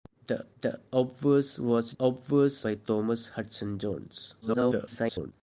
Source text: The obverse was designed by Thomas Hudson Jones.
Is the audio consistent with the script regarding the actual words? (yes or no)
no